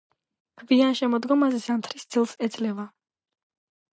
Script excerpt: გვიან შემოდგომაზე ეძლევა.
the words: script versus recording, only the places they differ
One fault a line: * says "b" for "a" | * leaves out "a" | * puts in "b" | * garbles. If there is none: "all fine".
* puts in "ზამთრის ძილს"